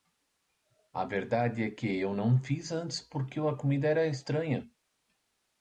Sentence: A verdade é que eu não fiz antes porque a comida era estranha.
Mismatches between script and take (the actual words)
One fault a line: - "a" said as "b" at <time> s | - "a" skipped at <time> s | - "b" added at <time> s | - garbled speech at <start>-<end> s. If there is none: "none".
none